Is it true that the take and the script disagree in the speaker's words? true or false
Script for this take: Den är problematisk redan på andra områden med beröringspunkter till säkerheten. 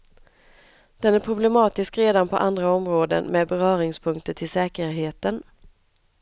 false